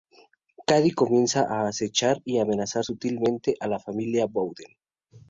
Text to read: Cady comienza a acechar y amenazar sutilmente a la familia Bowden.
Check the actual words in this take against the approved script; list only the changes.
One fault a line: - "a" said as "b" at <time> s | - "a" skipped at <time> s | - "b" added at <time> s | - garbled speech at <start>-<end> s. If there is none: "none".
none